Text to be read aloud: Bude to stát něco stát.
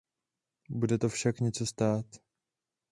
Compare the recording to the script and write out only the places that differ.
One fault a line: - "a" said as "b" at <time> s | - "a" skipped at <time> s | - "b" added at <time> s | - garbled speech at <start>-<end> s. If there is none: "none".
- "stát" said as "však" at 1.1 s